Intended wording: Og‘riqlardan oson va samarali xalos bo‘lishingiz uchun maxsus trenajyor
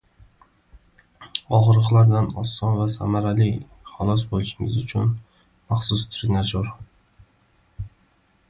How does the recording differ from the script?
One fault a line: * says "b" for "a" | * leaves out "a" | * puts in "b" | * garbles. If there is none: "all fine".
all fine